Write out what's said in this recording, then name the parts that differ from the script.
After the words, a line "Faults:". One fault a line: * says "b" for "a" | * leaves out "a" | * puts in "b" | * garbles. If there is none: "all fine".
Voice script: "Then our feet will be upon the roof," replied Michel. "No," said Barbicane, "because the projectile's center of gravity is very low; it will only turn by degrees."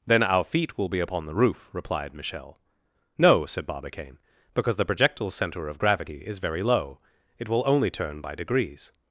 "Then our feet will be upon the roof," replied Michel. "No," said Barbicane, "because the projectile's center of gravity is very low; it will only turn by degrees."
Faults:
all fine